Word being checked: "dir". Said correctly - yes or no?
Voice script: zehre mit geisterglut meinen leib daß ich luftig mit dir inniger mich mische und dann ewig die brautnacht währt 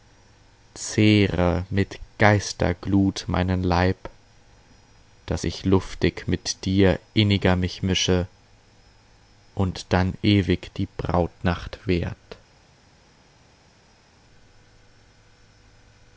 yes